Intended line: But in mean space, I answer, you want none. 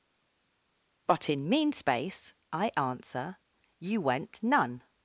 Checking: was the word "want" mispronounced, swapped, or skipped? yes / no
yes